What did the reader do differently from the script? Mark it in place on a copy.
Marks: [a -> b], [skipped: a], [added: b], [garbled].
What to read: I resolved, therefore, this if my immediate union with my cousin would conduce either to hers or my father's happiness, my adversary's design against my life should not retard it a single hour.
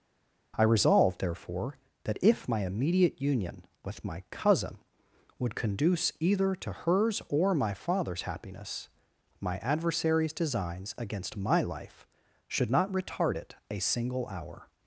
I resolved, therefore, [this -> that] if my immediate union with my cousin would conduce either to hers or my father's happiness, my adversary's [design -> designs] against my life should not retard it a single hour.